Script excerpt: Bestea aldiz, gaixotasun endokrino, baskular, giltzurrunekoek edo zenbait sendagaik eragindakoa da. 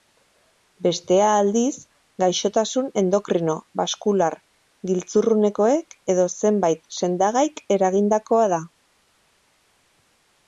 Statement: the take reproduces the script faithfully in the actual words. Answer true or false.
true